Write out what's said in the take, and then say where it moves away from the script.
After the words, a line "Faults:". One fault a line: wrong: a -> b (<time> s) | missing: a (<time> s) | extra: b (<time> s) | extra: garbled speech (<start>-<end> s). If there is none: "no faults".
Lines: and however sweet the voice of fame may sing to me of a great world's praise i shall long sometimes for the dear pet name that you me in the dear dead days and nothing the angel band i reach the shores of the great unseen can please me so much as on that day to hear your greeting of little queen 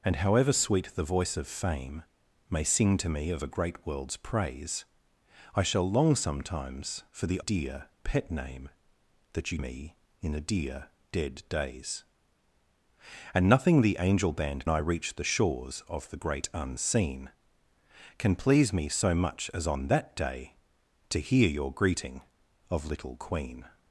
and however sweet the voice of fame may sing to me of a great world's praise i shall long sometimes for the dear pet name that you me in the dear dead days and nothing the angel band i reach the shores of the great unseen can please me so much as on that day to hear your greeting of little queen
Faults:
no faults